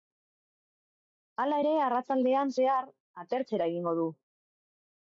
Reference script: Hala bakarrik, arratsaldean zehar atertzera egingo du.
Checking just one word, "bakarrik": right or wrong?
wrong